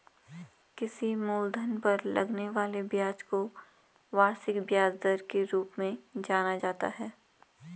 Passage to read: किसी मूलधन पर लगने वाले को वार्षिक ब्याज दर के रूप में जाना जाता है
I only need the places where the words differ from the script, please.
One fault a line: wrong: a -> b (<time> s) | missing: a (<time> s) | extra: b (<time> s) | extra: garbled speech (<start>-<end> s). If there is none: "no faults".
extra: ब्याज (2.8 s)